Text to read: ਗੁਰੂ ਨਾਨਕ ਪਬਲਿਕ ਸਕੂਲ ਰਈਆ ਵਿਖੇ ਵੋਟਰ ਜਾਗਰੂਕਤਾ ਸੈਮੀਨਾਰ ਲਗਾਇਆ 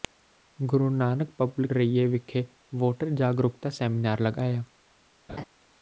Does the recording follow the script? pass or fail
fail